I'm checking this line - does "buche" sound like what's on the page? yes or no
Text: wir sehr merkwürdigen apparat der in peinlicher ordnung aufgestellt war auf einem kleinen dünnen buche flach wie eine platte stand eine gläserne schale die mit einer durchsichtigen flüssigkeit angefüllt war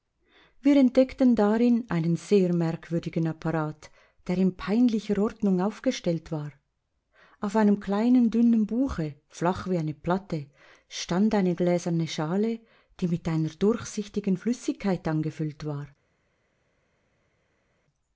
yes